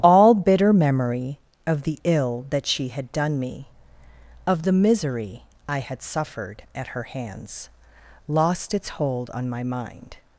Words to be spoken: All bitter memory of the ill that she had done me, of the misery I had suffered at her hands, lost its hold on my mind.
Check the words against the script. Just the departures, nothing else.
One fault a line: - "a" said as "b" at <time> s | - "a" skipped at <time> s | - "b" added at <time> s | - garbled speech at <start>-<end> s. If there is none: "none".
none